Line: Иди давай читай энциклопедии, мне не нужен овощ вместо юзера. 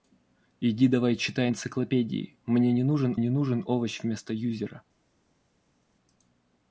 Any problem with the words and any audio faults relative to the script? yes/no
yes